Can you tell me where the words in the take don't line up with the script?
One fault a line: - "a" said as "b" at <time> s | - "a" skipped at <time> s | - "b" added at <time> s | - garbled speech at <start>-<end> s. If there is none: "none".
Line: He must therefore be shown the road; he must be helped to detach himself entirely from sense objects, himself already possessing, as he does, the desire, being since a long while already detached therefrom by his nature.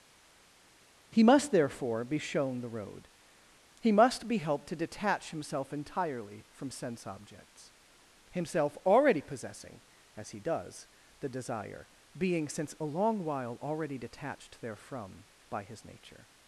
none